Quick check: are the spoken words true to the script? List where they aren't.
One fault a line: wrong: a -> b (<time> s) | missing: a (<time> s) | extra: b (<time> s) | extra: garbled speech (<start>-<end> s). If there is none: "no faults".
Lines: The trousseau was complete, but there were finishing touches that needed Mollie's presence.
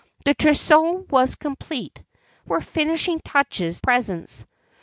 missing: but there (2.0 s)
missing: that needed Mollie's (3.8 s)